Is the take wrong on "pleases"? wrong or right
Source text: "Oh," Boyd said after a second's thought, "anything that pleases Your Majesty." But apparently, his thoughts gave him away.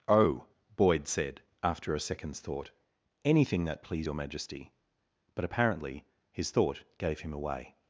wrong